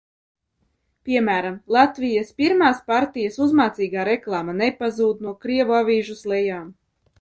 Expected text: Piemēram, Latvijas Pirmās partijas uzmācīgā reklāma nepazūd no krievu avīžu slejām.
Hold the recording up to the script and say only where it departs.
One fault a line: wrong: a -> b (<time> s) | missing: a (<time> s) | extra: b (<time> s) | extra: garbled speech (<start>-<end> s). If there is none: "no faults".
no faults